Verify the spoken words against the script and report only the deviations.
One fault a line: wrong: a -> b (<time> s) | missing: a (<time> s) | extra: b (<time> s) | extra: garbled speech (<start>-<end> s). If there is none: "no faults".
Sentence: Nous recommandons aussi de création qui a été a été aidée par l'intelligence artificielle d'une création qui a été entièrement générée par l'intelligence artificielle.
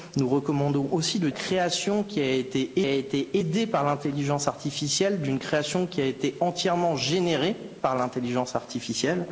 no faults